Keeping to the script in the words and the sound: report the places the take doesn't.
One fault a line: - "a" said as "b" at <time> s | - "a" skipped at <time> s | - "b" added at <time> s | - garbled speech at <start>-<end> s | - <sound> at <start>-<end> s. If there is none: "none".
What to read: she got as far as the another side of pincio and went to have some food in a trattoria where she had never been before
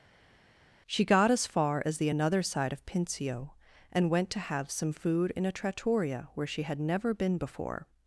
none